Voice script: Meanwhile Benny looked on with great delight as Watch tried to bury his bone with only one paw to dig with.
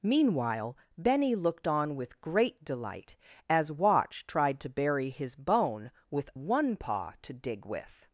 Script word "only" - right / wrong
wrong